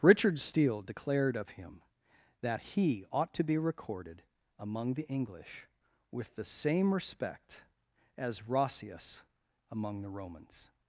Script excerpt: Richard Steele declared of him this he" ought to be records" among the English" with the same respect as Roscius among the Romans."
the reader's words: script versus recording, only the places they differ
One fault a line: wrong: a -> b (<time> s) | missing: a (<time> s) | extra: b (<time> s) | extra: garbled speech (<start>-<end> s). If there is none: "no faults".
wrong: this -> that (2.4 s)
wrong: records -> recorded (3.6 s)